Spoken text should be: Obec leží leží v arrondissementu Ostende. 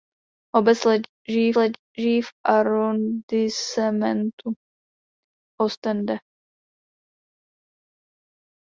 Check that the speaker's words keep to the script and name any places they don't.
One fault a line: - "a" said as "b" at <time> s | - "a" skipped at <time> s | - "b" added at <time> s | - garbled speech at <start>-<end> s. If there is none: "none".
none